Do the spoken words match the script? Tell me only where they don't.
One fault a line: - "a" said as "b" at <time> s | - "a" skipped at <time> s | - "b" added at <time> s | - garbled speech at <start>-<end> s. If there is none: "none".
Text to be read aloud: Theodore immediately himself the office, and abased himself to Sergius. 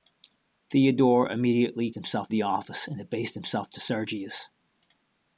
none